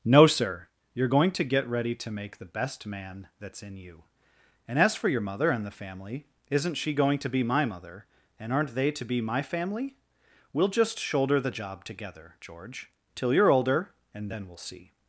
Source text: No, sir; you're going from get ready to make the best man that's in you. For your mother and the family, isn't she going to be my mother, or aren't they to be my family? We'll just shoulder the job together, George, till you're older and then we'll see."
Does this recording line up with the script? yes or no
no